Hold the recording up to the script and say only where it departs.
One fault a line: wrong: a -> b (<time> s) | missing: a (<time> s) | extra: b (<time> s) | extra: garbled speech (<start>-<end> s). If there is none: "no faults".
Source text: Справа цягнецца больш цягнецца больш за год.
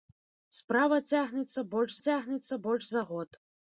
no faults